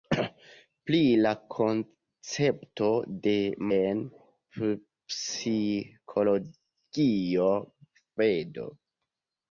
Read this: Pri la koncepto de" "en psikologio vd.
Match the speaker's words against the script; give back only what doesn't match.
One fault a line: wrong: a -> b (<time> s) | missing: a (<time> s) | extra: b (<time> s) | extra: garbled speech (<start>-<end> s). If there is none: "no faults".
no faults